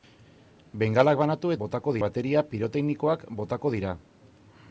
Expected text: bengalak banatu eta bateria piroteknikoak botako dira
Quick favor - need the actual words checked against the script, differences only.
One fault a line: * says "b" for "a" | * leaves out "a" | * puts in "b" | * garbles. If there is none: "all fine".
* says "botako" for "eta"